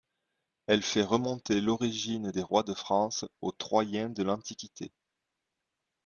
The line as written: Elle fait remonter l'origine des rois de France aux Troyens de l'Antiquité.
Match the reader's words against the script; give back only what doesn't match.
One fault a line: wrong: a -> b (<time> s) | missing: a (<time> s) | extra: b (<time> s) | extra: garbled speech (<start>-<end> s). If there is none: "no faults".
no faults